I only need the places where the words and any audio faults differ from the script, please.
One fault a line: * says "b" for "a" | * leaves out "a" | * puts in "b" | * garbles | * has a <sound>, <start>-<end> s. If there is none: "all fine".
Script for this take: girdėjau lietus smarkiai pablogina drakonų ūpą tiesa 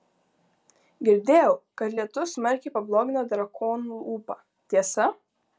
* puts in "kad"